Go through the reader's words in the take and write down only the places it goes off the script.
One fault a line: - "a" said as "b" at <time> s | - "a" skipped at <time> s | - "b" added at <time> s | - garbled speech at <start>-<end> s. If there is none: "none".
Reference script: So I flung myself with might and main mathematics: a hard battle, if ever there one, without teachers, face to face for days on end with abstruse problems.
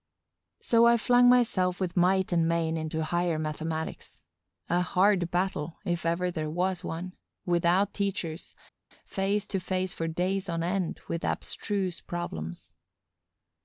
- "into higher" added at 2.8 s
- "was" added at 6.5 s